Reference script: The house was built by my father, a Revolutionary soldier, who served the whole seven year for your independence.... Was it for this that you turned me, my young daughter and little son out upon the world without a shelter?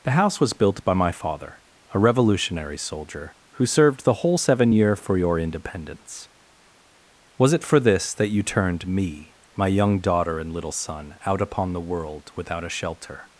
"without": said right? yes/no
yes